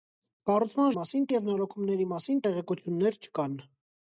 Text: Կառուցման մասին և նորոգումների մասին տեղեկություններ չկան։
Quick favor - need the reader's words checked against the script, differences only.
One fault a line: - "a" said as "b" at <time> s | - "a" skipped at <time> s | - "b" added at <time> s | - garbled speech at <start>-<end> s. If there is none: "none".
none